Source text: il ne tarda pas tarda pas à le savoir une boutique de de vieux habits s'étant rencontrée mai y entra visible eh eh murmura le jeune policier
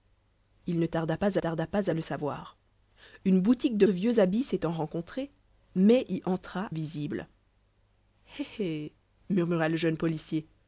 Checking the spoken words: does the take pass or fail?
pass